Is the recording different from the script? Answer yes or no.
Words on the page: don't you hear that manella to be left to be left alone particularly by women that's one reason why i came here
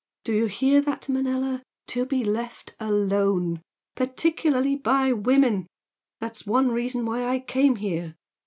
yes